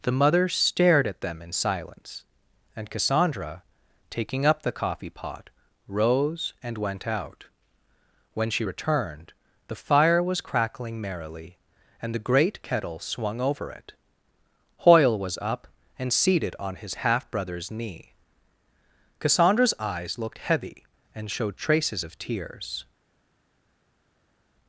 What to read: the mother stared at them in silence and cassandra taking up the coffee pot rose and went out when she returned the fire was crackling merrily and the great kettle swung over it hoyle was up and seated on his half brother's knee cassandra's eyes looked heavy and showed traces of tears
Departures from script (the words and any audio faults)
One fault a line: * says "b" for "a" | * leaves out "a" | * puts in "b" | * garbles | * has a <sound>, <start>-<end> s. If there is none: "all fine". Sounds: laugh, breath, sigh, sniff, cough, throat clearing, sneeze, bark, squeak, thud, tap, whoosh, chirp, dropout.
all fine